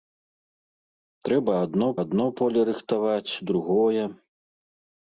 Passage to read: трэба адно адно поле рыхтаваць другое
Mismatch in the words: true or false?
false